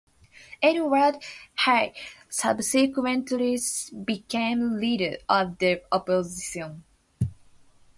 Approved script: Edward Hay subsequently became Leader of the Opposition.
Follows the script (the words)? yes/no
yes